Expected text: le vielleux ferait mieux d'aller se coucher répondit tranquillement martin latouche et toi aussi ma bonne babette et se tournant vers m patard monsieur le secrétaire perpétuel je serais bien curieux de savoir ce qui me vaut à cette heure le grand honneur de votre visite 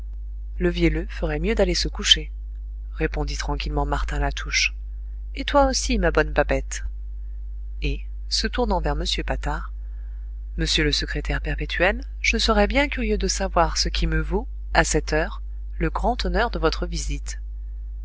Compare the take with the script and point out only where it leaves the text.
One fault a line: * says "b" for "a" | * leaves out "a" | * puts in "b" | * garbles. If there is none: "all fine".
all fine